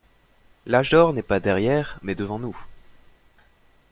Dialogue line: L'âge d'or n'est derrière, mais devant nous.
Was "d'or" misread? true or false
false